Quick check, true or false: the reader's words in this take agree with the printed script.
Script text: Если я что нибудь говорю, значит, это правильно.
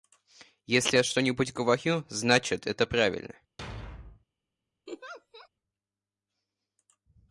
true